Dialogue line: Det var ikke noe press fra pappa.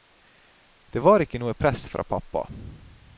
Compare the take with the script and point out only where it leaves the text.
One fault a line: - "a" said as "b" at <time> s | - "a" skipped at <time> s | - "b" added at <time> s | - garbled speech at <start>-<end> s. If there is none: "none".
none